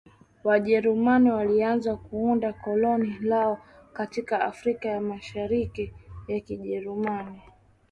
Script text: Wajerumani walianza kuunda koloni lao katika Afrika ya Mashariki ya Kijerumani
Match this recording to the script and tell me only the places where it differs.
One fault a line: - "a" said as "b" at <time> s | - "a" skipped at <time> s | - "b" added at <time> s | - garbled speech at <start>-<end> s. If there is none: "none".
none